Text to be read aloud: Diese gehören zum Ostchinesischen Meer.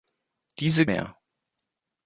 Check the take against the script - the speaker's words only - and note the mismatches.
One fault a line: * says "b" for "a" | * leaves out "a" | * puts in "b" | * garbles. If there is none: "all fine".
* leaves out "gehören zum Ostchinesischen"